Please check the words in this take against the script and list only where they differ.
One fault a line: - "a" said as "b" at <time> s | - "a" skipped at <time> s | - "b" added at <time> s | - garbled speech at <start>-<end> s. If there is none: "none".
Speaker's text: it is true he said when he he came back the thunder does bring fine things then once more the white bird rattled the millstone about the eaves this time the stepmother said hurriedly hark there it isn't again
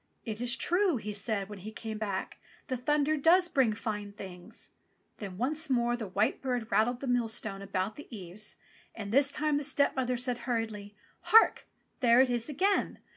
- "he" skipped at 1.7 s
- "and" added at 8.9 s
- "isn't" said as "is" at 12.3 s